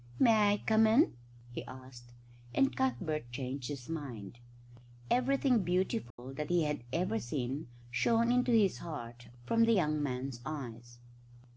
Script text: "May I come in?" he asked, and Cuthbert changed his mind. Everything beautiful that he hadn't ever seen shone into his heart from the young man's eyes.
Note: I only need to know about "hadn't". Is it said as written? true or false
false